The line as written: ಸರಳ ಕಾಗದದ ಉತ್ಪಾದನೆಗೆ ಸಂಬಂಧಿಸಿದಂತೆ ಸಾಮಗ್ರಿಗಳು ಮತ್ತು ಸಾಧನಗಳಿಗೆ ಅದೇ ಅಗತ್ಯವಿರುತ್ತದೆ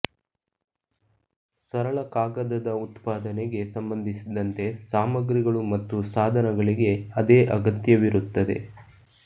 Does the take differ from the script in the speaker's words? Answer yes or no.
no